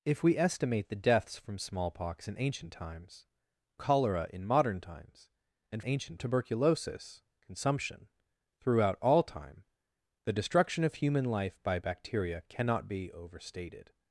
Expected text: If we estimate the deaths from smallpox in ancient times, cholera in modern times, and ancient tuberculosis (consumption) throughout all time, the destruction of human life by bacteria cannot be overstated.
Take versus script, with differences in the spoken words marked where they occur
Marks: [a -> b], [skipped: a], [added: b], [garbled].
If we estimate the deaths from smallpox in ancient times, cholera in modern times, and ancient tuberculosis (consumption) throughout all time, the destruction of human life by bacteria cannot be overstated.